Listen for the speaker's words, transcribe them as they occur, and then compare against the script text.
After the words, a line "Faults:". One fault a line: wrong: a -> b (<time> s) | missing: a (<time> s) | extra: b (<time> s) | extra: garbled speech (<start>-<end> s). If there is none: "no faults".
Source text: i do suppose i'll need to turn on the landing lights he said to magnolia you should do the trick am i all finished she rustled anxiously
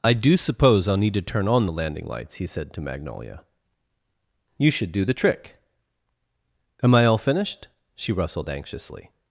i do suppose i'll need to turn on the landing lights he said to magnolia you should do the trick am i all finished she rustled anxiously
Faults:
no faults